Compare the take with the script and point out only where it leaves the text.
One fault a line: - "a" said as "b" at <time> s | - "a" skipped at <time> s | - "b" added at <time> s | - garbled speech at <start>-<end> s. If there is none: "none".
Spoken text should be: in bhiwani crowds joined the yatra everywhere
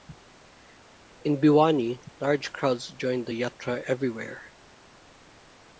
- "large" added at 2.2 s